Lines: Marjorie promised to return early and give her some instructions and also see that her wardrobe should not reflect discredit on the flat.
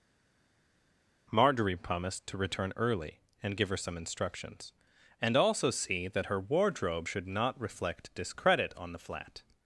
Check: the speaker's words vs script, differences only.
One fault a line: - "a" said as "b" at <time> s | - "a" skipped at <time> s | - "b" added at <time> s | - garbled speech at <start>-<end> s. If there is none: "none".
none